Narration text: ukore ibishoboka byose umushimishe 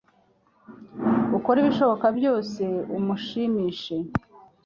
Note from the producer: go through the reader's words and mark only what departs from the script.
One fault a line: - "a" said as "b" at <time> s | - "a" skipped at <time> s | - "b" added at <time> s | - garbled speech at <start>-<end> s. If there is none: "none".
none